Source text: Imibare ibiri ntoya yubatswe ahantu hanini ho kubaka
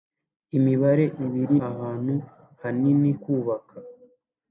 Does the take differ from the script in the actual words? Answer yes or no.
yes